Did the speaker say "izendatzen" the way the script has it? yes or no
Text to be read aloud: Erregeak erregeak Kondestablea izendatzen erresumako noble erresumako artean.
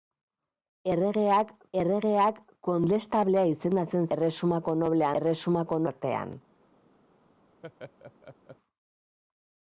yes